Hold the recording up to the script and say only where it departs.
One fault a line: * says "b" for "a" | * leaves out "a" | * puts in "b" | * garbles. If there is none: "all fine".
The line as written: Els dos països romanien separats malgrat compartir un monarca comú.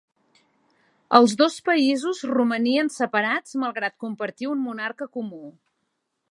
all fine